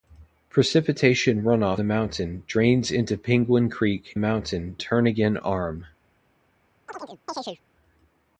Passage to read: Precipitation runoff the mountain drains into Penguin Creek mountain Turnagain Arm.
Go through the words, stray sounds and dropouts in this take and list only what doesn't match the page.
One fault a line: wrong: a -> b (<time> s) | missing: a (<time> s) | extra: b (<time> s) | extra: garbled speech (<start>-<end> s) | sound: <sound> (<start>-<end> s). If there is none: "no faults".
sound: chirp (6.9-7.6 s)